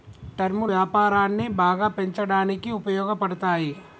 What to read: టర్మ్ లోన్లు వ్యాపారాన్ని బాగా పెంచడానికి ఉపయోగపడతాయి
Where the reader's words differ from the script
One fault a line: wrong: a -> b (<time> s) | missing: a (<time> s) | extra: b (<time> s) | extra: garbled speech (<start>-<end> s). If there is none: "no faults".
missing: లోన్లు (0.6 s)